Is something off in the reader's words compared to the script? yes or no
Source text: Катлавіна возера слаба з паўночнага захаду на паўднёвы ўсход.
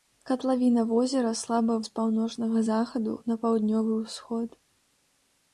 no